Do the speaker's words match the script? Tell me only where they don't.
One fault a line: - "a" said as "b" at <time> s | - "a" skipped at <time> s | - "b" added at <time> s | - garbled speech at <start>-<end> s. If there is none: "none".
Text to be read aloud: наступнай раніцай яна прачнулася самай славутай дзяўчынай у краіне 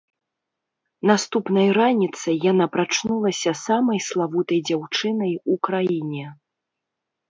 none